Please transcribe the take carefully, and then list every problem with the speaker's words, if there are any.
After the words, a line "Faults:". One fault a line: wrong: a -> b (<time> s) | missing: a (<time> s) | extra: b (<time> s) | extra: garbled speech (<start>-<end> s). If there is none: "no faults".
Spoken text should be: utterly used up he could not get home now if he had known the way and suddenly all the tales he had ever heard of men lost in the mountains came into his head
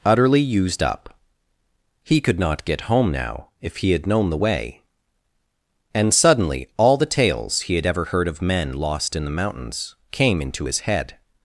utterly used up he could not get home now if he had known the way and suddenly all the tales he had ever heard of men lost in the mountains came into his head
Faults:
no faults